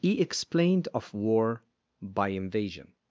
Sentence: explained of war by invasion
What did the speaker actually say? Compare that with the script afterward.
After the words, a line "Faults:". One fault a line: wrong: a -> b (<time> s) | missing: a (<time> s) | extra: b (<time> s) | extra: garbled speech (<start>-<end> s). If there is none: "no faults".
he explained of war by invasion
Faults:
extra: he (0.0 s)